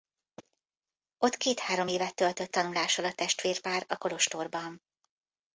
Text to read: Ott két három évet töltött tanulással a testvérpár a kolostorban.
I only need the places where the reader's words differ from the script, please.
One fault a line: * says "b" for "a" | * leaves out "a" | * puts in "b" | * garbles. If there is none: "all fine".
all fine